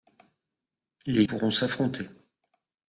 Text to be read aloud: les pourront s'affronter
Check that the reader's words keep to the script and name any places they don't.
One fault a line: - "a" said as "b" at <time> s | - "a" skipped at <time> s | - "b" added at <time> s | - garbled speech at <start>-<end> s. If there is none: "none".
none